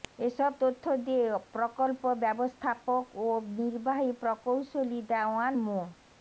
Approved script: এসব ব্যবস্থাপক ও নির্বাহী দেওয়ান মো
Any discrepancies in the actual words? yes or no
yes